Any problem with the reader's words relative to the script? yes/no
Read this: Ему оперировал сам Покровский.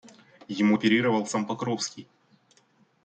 no